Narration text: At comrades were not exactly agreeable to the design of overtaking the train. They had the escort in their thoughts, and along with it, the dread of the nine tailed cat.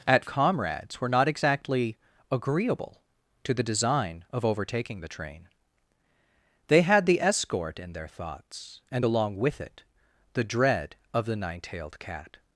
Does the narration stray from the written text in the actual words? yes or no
no